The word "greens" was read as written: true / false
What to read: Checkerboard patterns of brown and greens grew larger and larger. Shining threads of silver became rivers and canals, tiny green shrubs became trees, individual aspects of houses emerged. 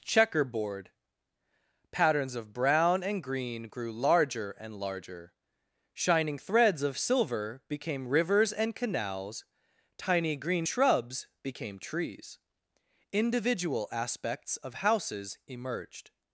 false